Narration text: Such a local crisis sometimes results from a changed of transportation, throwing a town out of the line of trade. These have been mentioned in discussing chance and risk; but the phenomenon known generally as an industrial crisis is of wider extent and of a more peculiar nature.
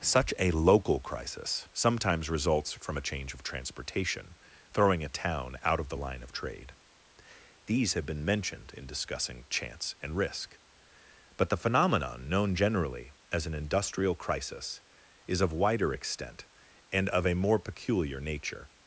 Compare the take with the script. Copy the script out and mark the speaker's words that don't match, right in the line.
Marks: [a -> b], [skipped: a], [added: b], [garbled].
Such a local crisis sometimes results from a [changed -> change] of transportation, throwing a town out of the line of trade. These have been mentioned in discussing chance and risk; but the phenomenon known generally as an industrial crisis is of wider extent and of a more peculiar nature.